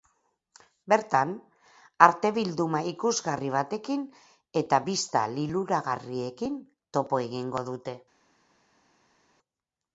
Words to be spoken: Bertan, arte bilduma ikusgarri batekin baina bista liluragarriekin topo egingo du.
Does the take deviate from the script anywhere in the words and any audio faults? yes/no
yes